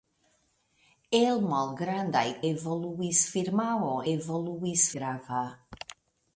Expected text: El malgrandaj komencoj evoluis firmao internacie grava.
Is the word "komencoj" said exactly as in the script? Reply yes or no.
no